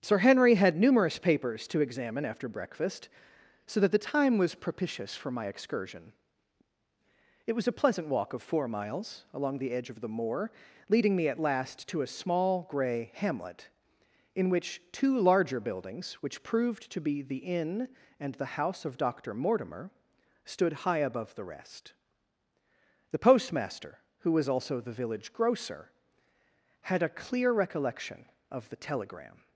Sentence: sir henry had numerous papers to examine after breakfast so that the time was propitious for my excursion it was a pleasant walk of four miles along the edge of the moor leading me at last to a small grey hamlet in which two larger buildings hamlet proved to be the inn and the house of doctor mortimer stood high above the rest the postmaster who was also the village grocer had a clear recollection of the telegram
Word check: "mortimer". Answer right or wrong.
right